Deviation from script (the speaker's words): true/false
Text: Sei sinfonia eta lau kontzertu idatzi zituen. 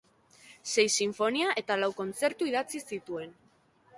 false